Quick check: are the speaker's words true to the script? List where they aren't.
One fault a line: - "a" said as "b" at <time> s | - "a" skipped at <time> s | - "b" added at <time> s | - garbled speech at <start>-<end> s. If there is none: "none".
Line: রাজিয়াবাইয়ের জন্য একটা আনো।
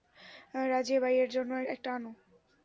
none